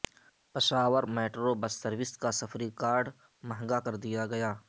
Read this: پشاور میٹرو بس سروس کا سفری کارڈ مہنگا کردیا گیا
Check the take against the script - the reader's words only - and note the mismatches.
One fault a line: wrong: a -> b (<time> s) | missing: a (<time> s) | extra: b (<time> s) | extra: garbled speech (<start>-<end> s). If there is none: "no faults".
no faults